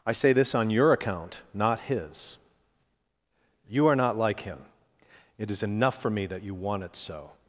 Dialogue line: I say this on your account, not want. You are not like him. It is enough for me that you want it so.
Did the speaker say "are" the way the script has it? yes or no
yes